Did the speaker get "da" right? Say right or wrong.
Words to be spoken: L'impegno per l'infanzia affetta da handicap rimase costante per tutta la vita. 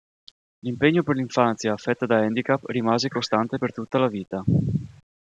right